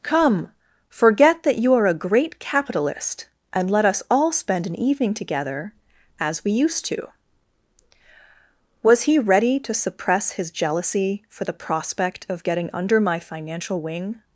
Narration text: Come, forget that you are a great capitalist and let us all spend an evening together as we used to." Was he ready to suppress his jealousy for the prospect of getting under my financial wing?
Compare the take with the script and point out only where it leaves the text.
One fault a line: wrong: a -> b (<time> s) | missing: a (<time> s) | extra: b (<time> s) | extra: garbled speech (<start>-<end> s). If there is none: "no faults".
no faults